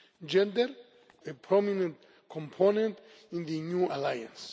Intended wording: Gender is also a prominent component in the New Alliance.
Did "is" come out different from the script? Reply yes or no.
yes